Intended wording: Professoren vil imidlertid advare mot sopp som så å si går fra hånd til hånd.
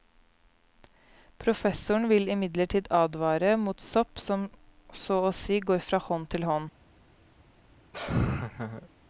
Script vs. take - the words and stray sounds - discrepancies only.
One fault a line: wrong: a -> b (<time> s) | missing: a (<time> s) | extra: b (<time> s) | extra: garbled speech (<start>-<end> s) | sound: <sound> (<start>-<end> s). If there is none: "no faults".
sound: laugh (7.9-8.9 s)